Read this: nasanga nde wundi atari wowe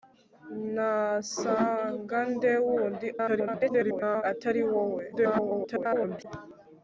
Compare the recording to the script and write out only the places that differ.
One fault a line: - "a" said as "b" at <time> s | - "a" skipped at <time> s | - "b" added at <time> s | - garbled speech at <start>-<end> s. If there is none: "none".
- garbled speech at 3.1-4.2 s
- garbled speech at 5.1-6.3 s